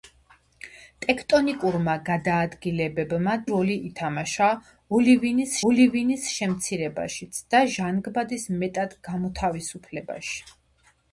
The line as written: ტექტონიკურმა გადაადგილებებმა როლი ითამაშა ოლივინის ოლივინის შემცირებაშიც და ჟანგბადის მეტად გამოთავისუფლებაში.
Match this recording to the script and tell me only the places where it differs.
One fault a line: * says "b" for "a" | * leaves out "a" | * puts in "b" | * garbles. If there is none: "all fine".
all fine